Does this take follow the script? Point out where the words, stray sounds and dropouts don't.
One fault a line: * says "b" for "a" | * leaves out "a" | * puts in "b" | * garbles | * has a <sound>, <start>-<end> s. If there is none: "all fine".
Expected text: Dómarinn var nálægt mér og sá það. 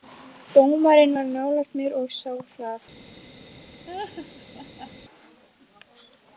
* has a laugh, 3.9-4.9 s